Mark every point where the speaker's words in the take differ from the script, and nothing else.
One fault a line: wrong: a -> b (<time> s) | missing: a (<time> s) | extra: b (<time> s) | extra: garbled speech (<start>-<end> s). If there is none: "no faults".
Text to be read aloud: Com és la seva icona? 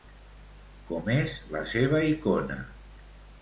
no faults